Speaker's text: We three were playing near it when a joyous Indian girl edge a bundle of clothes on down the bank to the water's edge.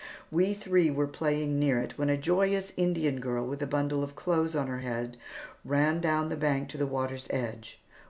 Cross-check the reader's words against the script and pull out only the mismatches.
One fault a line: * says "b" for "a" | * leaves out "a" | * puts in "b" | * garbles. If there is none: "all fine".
* says "with" for "edge"
* puts in "her head ran"